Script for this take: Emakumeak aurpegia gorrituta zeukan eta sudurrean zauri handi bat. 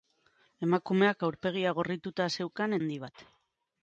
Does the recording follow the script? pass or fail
fail